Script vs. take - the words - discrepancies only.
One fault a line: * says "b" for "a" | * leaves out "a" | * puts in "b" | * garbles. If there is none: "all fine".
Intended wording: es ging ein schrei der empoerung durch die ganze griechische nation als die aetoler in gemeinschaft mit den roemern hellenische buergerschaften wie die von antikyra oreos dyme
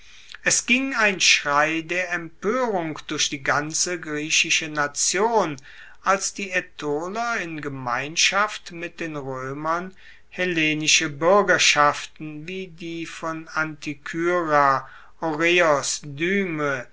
all fine